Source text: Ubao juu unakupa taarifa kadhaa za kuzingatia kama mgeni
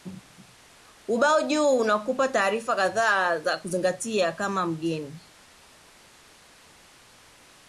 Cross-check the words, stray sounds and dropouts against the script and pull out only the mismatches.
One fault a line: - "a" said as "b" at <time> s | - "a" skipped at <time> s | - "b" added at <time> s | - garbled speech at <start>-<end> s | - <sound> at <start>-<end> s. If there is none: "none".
none